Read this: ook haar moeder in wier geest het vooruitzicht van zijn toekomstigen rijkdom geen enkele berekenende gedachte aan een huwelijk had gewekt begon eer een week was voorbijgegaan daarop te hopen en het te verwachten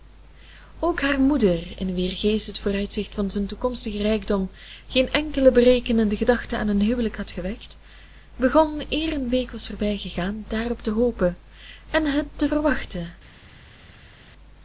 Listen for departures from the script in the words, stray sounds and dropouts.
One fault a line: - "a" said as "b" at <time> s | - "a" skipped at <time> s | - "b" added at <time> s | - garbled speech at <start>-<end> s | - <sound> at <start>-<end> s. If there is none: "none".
none